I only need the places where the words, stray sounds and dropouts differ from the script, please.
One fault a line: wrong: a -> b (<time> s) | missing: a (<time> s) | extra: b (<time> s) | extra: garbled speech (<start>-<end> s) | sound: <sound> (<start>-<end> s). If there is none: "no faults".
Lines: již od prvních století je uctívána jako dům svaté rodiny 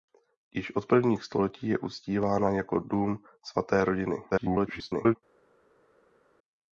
extra: garbled speech (4.3-5.2 s)